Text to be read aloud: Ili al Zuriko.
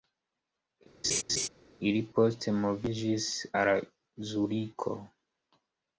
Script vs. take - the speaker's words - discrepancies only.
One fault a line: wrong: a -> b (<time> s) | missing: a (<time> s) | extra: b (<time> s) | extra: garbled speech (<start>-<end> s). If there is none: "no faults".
extra: poste moviĝis (2.2 s)